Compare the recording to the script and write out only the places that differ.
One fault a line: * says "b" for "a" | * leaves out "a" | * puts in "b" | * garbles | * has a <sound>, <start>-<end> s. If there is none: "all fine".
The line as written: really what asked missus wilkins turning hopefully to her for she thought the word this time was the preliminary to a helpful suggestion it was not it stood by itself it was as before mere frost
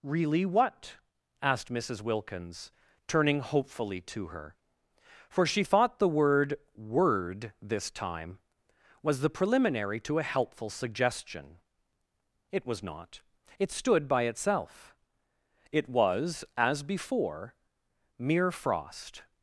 * puts in "word"